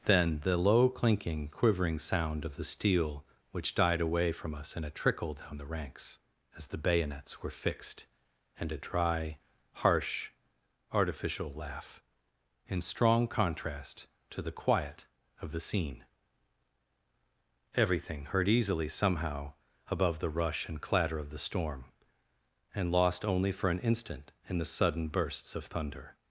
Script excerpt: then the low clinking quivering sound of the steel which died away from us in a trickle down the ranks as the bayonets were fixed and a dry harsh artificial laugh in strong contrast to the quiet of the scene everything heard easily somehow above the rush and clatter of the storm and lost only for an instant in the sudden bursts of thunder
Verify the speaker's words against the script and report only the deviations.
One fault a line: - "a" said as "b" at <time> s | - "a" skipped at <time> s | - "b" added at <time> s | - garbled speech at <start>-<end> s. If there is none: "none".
none